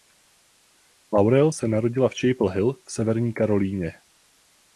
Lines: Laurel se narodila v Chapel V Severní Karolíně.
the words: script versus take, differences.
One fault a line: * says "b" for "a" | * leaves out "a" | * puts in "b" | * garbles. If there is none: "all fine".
* puts in "Hill"